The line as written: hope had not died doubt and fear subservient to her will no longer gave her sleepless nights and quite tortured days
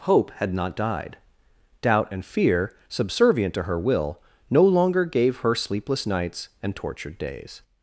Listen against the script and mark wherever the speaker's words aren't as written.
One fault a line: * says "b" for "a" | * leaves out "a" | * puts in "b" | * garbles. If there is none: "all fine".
* leaves out "quite"